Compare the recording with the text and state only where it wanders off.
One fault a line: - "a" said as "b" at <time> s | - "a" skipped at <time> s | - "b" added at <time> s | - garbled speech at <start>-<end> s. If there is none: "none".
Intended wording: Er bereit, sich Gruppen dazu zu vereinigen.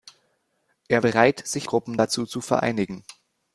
none